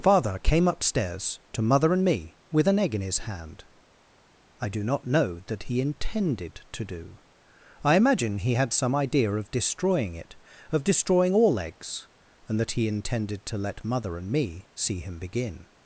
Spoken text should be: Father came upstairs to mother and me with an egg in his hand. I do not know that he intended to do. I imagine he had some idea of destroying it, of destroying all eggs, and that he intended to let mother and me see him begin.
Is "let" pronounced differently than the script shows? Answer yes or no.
no